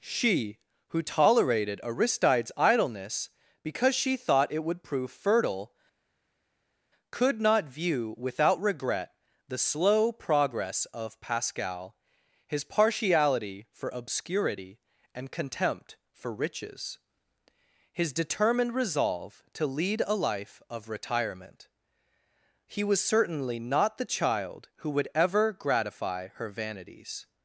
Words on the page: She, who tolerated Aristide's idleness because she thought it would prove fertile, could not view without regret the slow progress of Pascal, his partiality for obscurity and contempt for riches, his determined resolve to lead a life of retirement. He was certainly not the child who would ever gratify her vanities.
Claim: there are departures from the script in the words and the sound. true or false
false